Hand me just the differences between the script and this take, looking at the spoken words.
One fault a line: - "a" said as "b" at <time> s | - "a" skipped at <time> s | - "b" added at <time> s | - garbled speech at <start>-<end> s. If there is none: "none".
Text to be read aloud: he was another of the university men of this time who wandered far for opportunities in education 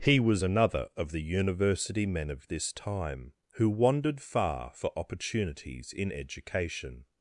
none